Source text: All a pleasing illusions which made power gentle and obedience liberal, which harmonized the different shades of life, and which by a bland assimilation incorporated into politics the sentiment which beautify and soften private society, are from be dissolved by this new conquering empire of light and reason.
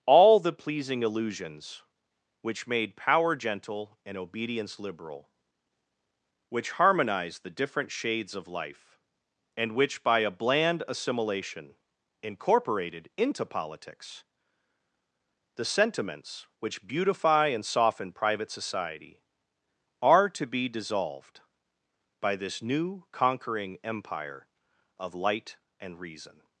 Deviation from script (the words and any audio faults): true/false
true